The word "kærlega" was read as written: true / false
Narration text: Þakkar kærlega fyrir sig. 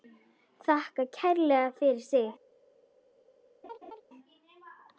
true